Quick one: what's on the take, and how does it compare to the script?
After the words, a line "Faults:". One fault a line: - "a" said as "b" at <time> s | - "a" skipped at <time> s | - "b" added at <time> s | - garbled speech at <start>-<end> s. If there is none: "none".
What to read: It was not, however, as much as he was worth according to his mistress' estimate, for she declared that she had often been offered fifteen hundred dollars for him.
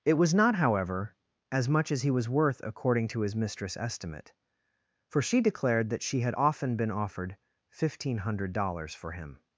It was not, however, as much as he was worth according to his mistress' estimate, for she declared that she had often been offered fifteen hundred dollars for him.
Faults:
none